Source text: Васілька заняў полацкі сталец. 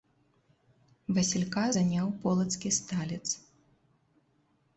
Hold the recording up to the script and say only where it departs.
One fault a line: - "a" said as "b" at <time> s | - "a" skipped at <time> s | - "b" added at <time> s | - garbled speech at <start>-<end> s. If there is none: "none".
none